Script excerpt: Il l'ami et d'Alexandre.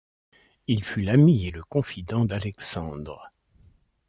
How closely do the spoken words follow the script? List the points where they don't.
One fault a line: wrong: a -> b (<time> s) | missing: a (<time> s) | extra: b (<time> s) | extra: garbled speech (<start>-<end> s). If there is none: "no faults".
extra: fut (0.8 s)
extra: le confident (1.5 s)